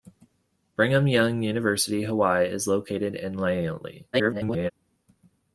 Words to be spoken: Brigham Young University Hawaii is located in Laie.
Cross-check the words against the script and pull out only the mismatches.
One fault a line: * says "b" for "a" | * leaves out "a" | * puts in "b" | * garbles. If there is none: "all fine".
* garbles